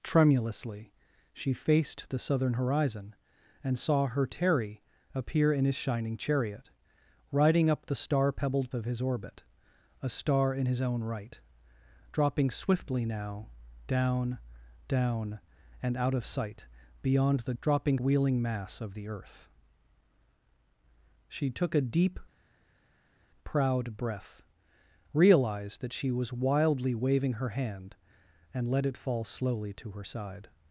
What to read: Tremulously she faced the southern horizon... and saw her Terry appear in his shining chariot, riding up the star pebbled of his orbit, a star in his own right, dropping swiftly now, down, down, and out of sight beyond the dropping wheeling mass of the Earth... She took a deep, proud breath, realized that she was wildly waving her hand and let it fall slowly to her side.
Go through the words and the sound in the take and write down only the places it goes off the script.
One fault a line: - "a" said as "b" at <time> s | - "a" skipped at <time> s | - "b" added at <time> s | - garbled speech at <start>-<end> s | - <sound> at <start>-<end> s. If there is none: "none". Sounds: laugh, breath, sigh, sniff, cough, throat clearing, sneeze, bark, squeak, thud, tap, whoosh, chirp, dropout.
none